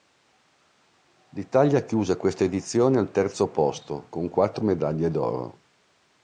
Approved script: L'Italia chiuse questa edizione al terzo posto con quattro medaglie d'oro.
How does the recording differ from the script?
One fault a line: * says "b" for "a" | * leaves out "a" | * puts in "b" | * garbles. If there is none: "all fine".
all fine